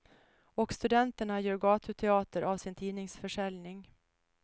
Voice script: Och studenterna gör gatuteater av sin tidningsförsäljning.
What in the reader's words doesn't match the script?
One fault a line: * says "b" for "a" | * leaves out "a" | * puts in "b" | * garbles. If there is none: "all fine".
all fine